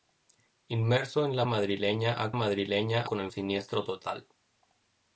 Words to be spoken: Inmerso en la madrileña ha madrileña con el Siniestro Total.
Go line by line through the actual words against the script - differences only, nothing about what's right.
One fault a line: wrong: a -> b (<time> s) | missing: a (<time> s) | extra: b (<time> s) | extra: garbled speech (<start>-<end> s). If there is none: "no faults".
no faults